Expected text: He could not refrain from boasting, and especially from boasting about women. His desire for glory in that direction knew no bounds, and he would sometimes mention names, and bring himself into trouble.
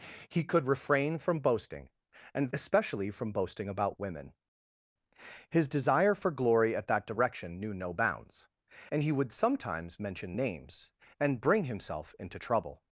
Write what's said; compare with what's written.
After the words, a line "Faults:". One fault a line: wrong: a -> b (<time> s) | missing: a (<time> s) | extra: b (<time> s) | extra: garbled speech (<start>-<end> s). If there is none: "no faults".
He could refrain from boasting, and especially from boasting about women. His desire for glory at that direction knew no bounds, and he would sometimes mention names, and bring himself into trouble.
Faults:
missing: not (0.7 s)
wrong: in -> at (6.8 s)